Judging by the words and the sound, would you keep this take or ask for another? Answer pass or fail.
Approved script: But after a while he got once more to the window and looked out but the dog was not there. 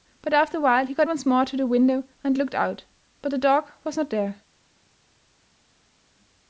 pass